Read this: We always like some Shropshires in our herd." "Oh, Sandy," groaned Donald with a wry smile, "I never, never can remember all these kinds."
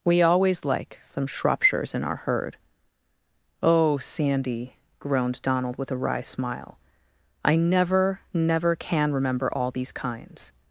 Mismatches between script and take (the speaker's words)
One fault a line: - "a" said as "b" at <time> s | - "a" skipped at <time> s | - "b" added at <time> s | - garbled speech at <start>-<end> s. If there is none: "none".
none